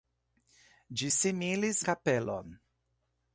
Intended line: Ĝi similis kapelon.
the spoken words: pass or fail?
pass